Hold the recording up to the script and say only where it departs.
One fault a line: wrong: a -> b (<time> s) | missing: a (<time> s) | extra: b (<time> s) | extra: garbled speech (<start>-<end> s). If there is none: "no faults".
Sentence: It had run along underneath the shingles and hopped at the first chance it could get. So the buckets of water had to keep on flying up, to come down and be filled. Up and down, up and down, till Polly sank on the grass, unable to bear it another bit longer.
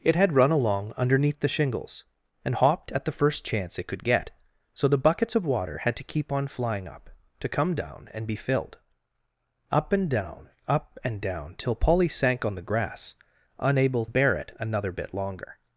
missing: to (14.1 s)